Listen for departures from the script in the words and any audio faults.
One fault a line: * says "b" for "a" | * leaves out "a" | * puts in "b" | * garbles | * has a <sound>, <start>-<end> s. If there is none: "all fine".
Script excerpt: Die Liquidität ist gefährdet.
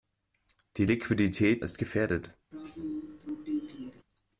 * has a throat clearing, 2.5-4.0 s